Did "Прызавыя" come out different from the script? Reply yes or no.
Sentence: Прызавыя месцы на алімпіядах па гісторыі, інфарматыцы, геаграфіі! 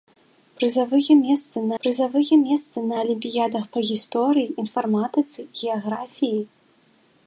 no